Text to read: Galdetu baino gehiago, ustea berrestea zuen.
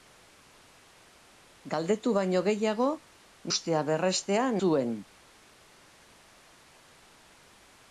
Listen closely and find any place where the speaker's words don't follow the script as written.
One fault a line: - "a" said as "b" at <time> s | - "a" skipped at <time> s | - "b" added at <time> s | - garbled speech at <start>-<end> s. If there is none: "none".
none